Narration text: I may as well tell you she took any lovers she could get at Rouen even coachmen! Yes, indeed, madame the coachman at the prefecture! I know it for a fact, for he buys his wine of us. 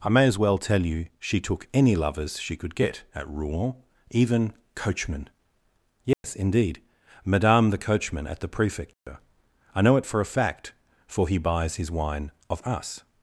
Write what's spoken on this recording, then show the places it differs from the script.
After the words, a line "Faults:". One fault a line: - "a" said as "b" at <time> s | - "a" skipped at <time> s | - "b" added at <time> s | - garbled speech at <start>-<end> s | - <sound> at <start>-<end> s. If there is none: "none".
I may as well tell you she took any lovers she could get at Rouen even coachmen! Yes, indeed, madame the coachman at the prefecture! I know it for a fact, for he buys his wine of us.
Faults:
- dropout at 6.1-6.2 s
- dropout at 8.9-9.1 s